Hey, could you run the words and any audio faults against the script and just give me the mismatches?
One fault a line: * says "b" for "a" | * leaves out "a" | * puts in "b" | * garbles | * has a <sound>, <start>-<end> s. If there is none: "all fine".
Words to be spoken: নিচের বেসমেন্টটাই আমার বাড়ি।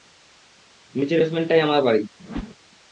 * has a whoosh, 2.2-2.6 s